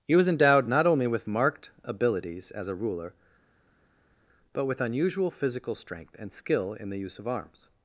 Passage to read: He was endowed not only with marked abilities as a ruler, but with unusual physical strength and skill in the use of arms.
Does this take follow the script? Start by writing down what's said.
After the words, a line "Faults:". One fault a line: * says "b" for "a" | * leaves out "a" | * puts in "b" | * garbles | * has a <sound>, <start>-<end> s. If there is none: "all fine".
He was endowed not only with marked abilities as a ruler, but with unusual physical strength and skill in the use of arms.
Faults:
all fine